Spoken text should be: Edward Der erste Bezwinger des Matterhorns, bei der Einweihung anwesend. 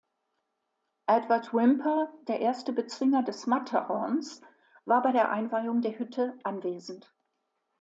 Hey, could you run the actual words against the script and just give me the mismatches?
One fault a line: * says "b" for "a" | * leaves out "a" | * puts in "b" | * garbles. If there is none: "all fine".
* puts in "Whymper"
* puts in "war"
* puts in "der Hütte"